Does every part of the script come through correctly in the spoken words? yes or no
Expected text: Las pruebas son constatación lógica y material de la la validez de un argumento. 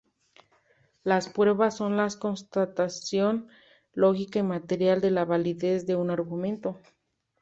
no